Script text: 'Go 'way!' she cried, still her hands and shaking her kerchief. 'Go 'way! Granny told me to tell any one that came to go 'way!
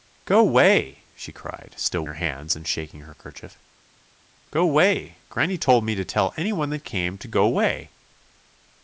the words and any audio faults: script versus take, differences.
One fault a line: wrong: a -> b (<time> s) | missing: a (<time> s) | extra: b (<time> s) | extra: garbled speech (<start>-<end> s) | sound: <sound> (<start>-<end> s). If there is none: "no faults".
no faults